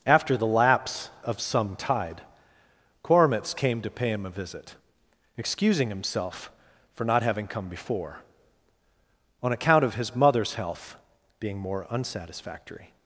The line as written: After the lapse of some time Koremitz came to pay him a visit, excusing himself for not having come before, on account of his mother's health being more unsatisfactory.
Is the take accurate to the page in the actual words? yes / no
no